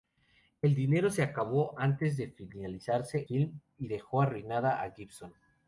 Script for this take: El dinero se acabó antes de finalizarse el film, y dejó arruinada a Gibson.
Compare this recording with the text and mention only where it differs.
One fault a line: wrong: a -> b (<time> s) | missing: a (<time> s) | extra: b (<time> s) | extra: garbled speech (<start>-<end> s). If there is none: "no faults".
missing: el (3.3 s)